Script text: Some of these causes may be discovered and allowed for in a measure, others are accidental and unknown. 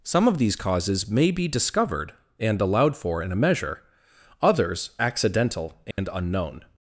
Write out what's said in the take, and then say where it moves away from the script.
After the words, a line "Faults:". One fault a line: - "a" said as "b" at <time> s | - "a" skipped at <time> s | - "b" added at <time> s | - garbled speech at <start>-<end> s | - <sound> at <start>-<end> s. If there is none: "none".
Some of these causes may be discovered and allowed for in a measure, others accidental and unknown.
Faults:
- "are" skipped at 5.0 s
- dropout at 5.9-6.0 s